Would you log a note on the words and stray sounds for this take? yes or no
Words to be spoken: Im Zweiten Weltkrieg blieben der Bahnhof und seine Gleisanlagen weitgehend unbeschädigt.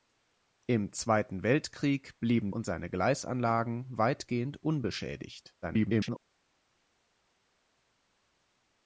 yes